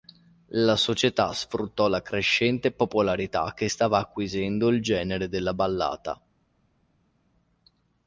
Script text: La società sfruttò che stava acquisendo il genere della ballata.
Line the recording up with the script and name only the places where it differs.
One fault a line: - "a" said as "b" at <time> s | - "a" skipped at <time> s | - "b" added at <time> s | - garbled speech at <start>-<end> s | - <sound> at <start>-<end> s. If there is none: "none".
- "la crescente popolarità" added at 1.9 s